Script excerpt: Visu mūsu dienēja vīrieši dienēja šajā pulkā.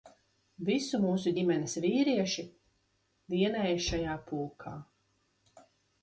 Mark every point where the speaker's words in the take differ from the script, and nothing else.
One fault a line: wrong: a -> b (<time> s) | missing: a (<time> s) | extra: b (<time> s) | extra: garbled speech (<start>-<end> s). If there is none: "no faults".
wrong: dienēja -> ģimenes (1.4 s)